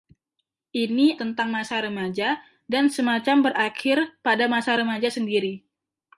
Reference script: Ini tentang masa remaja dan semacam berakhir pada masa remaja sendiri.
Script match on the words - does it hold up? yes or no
yes